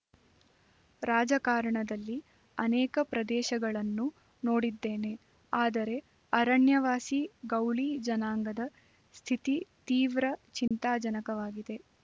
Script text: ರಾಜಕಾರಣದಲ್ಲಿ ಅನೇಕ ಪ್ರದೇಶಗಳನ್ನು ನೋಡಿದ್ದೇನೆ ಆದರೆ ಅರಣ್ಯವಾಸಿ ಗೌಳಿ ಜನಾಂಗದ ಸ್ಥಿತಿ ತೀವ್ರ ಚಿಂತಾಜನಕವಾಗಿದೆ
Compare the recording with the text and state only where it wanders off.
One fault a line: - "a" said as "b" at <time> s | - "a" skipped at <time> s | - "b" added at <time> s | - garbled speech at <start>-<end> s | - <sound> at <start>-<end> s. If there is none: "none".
- dropout at 10.7-10.7 s